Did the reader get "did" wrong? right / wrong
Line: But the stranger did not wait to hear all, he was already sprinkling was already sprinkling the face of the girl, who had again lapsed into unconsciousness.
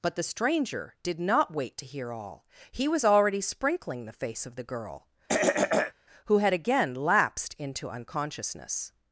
right